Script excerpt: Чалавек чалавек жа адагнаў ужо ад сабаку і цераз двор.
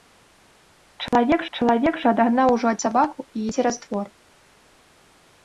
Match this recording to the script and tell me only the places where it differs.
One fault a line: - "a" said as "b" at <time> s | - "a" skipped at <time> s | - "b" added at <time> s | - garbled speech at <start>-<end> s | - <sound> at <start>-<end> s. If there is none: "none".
- dropout at 1.1-1.1 s